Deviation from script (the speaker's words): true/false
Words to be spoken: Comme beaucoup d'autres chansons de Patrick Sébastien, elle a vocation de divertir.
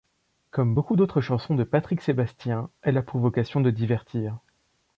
true